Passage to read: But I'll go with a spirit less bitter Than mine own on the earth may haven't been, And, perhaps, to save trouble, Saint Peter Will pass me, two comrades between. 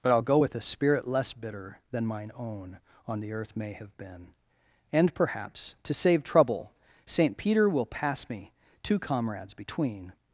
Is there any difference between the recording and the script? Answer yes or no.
yes